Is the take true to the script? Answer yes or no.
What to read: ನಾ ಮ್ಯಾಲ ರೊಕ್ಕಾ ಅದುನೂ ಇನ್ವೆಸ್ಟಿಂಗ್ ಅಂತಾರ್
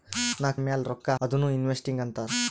yes